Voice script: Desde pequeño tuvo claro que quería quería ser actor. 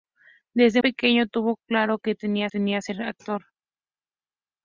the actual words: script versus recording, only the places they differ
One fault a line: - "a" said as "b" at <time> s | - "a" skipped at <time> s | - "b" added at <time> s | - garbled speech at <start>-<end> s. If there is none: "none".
none